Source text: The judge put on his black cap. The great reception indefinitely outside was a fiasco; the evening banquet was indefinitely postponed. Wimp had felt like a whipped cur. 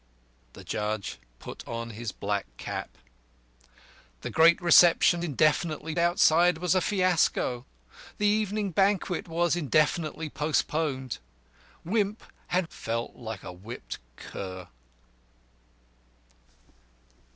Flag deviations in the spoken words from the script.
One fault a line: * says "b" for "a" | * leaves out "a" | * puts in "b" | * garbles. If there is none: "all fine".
all fine